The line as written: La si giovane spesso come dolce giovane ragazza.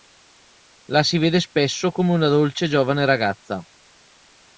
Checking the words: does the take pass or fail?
fail